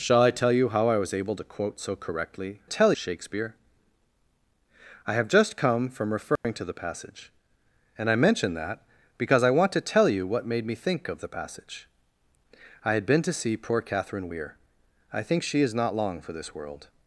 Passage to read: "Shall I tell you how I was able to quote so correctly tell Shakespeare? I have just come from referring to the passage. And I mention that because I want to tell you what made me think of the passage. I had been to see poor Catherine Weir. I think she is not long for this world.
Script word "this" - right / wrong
right